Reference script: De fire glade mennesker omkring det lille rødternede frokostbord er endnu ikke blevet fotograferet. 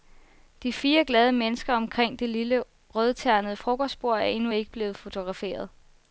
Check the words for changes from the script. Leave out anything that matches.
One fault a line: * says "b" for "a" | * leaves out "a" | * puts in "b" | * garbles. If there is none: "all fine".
all fine